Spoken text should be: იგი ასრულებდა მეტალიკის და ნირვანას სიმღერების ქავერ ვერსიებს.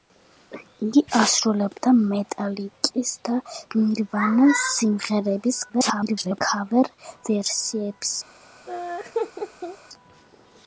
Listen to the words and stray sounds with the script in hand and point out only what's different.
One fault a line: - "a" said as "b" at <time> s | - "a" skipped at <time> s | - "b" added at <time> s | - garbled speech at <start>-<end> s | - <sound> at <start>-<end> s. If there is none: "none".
- garbled speech at 5.7-6.4 s
- laugh at 8.7-9.8 s